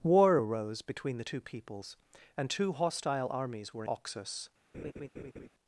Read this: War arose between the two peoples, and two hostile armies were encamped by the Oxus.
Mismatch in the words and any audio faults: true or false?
true